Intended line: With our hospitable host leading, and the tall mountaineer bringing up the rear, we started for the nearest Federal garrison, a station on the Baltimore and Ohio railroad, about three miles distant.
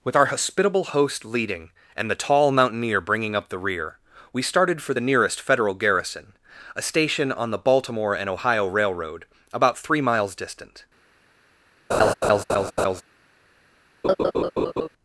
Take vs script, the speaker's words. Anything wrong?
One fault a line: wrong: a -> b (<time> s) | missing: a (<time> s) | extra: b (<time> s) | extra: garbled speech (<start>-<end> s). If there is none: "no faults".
no faults